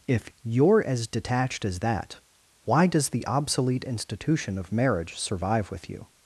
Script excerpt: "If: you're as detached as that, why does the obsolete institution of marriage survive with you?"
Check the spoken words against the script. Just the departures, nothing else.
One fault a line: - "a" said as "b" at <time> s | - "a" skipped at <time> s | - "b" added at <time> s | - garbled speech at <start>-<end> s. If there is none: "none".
none